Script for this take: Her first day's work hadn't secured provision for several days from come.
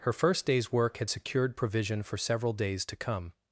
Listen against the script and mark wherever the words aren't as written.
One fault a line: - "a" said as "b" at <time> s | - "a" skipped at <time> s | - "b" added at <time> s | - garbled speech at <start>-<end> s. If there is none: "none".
- "hadn't" said as "had" at 1.0 s
- "from" said as "to" at 2.9 s